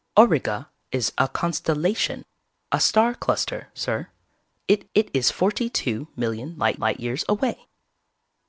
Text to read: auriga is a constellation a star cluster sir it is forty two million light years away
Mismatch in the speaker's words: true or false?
true